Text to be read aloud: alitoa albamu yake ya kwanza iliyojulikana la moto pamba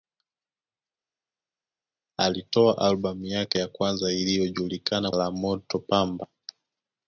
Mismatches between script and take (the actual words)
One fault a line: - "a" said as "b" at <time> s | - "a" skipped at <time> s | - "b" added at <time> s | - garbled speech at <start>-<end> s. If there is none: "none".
none